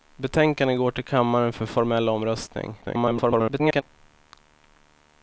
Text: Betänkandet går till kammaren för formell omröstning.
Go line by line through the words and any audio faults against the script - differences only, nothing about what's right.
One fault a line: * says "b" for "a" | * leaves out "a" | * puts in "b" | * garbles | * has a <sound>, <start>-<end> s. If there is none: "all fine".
* garbles